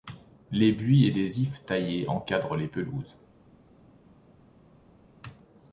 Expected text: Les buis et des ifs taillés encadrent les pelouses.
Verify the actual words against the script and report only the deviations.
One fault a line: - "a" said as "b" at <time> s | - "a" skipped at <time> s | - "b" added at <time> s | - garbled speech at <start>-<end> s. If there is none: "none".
none